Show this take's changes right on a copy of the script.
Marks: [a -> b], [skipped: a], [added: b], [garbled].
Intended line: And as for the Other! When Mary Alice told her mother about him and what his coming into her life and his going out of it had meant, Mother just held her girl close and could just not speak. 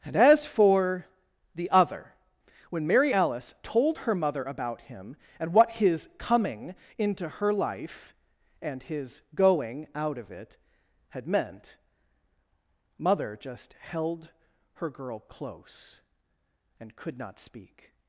And as for the Other! When Mary Alice told her mother about him and what his coming into her life and his going out of it had meant, Mother just held her girl close and could [skipped: just] not speak.